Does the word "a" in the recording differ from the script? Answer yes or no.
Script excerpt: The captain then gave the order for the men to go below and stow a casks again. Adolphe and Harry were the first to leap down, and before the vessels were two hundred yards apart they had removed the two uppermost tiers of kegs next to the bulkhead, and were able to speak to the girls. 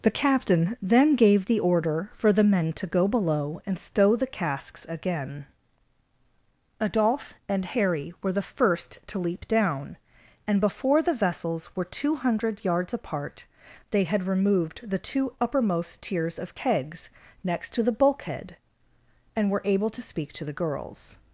yes